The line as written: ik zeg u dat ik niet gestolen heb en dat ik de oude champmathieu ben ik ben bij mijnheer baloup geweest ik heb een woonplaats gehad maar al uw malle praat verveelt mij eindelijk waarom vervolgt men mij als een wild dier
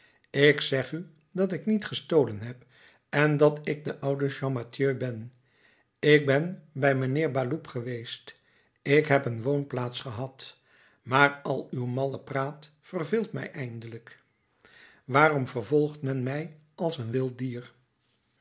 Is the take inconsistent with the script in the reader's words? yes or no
no